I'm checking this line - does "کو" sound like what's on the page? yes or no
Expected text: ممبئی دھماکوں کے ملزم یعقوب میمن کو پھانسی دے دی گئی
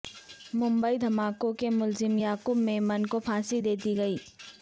yes